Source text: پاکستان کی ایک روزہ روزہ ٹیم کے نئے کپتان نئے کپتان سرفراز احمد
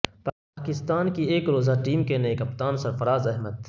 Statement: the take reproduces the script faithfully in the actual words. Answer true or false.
false